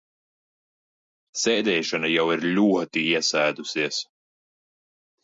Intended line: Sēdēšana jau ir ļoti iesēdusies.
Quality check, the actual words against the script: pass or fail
pass